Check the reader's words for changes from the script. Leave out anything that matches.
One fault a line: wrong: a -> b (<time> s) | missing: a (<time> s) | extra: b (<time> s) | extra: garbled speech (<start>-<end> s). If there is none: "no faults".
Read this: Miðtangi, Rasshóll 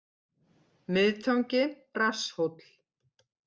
no faults